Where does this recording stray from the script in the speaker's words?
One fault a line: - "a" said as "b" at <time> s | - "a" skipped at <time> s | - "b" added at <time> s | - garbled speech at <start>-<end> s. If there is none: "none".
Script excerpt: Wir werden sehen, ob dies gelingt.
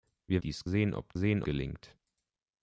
- "werden" said as "dies" at 0.4 s
- "dies" said as "sehen" at 1.1 s